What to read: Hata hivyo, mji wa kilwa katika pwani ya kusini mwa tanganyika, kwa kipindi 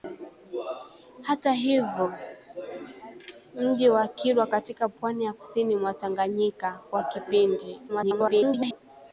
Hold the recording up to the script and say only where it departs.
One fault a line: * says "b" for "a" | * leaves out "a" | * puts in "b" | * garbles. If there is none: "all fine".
* garbles